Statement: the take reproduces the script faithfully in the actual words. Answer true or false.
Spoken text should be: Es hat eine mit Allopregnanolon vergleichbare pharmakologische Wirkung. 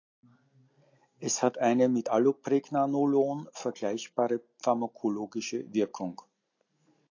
true